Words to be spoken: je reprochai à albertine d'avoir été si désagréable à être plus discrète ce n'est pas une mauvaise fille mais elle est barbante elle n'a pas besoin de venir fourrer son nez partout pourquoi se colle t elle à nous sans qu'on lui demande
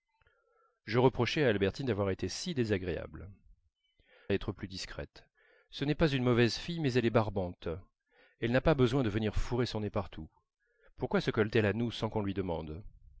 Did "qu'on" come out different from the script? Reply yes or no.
no